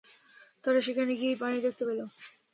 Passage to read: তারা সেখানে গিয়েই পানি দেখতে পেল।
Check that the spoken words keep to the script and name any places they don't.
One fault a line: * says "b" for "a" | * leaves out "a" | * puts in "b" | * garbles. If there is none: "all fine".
all fine